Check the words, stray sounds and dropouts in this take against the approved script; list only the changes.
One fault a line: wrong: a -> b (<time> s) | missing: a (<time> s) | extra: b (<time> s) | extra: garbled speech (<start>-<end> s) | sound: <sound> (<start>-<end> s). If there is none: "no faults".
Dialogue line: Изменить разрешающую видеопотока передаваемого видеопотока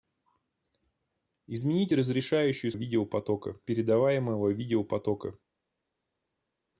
no faults